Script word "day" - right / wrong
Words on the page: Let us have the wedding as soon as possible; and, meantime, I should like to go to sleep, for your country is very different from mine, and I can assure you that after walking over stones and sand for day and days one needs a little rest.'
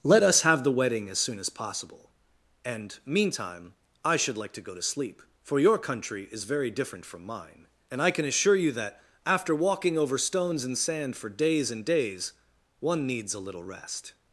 wrong